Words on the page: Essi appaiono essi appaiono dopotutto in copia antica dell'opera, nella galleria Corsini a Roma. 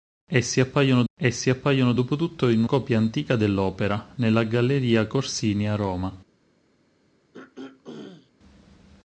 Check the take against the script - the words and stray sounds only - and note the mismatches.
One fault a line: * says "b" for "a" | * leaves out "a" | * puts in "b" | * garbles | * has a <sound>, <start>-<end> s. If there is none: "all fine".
* has a throat clearing, 7.3-8.3 s